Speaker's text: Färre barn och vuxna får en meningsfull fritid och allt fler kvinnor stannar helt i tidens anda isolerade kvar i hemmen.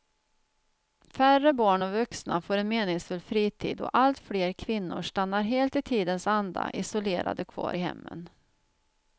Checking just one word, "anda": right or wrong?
right